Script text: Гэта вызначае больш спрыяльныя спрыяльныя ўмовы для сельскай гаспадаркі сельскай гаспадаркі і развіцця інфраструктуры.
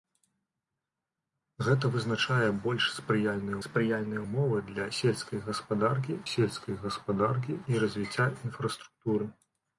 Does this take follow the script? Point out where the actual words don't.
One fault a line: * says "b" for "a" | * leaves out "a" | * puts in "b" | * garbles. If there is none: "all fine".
all fine